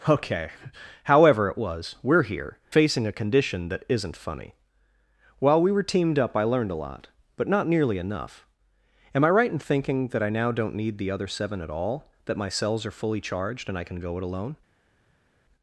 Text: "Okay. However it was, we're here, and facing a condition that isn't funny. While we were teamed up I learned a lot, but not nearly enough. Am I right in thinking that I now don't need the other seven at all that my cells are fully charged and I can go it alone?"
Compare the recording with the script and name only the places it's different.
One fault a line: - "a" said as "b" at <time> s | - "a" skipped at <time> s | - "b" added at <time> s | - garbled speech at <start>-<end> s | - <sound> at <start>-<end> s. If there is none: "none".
- "and" skipped at 2.6 s